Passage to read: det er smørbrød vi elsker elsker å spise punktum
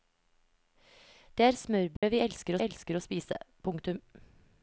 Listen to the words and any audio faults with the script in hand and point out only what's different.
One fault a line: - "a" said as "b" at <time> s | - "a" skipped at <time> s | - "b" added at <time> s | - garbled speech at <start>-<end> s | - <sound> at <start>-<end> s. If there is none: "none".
- dropout at 2.0-2.0 s